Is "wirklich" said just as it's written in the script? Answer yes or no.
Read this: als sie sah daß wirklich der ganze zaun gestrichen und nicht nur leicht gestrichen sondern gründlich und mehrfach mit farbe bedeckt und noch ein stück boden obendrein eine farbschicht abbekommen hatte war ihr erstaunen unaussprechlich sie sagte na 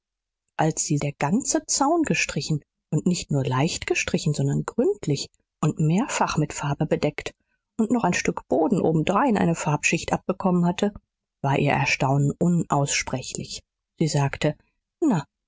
no